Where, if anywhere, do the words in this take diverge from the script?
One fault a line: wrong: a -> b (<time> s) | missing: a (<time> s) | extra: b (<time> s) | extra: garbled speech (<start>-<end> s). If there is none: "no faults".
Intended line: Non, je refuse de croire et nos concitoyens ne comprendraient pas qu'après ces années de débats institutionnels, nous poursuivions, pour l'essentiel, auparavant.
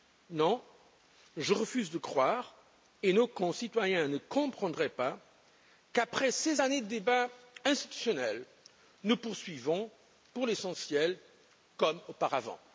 extra: comme (11.8 s)